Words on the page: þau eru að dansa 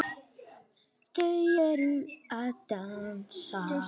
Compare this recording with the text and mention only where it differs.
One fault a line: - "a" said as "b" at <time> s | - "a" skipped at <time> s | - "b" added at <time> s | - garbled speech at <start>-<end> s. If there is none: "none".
none